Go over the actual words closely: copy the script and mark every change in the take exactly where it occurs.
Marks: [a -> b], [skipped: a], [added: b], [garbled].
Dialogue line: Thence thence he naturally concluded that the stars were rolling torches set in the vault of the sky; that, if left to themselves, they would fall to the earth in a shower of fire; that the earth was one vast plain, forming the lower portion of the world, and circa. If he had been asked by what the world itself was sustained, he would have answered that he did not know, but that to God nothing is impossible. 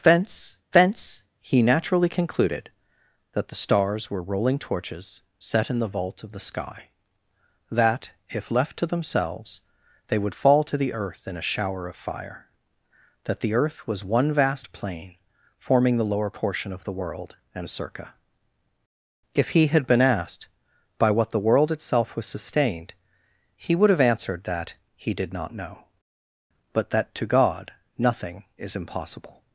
Thence thence he naturally concluded that the stars were rolling torches set in the vault of the sky; that, if left to themselves, they would fall to the earth in a shower of fire; that the earth was one vast plain, forming the lower portion of the world, and circa. If he had been asked by what the world itself was sustained, he would have answered that he did not know, but that to God nothing is impossible.